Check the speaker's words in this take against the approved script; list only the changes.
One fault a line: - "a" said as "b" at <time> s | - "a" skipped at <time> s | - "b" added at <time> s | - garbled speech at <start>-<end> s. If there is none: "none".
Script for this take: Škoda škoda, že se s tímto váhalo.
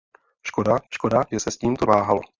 none